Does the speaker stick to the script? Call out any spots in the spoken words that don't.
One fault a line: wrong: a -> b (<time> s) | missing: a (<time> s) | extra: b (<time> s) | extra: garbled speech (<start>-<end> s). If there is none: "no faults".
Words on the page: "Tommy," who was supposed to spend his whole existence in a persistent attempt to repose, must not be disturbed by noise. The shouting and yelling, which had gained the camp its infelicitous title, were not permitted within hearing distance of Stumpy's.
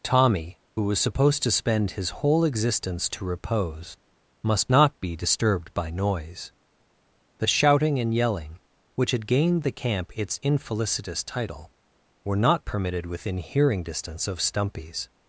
missing: in a persistent attempt (3.1 s)